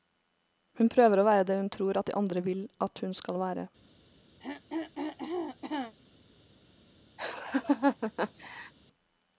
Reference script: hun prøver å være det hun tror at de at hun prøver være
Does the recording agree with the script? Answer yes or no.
no